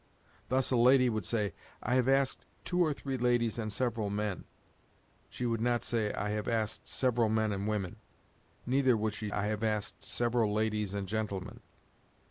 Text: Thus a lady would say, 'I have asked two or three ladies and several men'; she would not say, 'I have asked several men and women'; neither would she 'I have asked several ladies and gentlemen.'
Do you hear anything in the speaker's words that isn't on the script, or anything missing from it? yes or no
no